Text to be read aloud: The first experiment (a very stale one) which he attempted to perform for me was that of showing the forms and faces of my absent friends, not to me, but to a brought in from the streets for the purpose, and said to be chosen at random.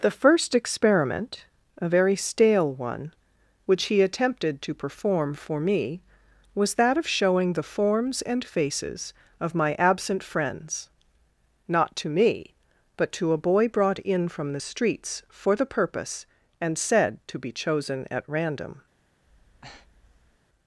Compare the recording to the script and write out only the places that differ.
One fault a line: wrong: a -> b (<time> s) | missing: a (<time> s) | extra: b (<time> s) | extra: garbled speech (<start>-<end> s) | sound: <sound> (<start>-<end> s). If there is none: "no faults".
extra: boy (13.4 s)
sound: breath (19.2-20.4 s)